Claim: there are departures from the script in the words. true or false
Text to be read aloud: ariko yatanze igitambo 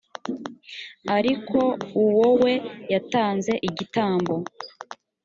true